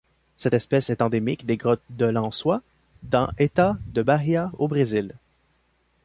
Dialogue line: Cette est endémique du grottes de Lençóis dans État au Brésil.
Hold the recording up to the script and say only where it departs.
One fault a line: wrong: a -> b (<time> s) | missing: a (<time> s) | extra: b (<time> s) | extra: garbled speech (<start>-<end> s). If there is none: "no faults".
extra: espèce (0.5 s)
wrong: du -> des (1.5 s)
extra: de Bahia (3.9 s)